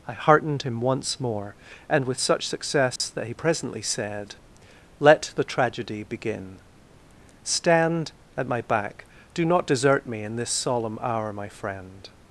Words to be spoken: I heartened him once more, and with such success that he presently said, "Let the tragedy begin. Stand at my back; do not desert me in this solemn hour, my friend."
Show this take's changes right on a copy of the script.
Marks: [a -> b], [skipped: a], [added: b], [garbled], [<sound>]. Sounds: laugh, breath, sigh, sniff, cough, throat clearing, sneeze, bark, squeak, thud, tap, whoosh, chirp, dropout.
I heartened him once more, and with such success [dropout] that he presently said, "Let the tragedy begin. Stand at my back; do not desert me in this solemn hour, my friend."